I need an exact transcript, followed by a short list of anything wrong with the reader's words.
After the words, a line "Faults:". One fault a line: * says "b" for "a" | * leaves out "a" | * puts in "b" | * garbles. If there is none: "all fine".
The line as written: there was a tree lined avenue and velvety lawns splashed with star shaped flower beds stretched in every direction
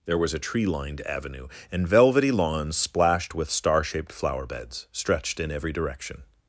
there was a tree lined avenue and velvety lawns splashed with star shaped flower beds stretched in every direction
Faults:
all fine